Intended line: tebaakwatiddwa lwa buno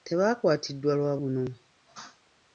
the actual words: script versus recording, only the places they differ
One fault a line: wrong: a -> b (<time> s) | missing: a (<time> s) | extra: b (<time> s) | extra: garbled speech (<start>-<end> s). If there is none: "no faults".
no faults